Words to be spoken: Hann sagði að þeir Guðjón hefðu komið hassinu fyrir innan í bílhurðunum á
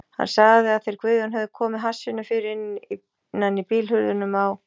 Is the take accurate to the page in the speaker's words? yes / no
yes